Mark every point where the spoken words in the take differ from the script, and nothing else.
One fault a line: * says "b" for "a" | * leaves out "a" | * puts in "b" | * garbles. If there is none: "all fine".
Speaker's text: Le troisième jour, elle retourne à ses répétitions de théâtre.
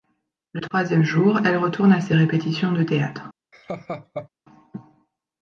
all fine